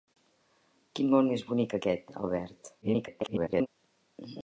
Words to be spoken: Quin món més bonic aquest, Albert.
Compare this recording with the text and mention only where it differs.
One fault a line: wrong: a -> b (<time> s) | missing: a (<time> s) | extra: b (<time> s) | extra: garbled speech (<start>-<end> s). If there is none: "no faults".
extra: garbled speech (2.8-3.7 s)